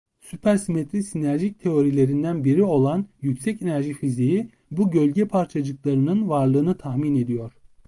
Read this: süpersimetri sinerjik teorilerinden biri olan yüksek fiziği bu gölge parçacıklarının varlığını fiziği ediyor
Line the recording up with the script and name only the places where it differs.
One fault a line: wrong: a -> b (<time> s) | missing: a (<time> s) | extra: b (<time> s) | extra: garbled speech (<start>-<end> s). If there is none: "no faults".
extra: enerji (3.6 s)
wrong: fiziği -> tahmin (6.8 s)